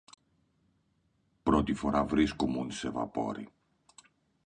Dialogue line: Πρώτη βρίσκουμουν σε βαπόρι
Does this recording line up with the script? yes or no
no